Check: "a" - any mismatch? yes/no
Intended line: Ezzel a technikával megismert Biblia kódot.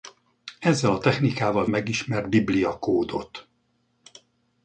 no